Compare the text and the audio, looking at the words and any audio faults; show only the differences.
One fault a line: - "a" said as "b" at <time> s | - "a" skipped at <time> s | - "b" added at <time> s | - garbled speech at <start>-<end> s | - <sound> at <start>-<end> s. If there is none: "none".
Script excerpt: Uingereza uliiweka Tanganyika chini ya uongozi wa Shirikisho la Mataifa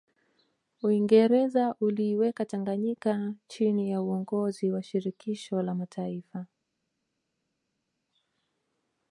none